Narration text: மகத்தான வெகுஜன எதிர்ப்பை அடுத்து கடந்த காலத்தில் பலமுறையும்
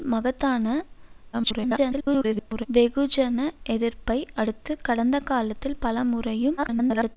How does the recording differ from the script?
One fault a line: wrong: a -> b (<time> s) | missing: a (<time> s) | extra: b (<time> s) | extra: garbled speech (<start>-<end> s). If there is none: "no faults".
extra: garbled speech (1.3-2.7 s)
extra: garbled speech (6.6-7.2 s)